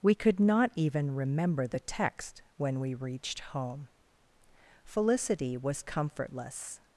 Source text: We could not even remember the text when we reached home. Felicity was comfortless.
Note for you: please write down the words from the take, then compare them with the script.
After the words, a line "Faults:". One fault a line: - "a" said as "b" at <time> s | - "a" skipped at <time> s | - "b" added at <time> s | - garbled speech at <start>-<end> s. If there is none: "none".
We could not even remember the text when we reached home. Felicity was comfortless.
Faults:
none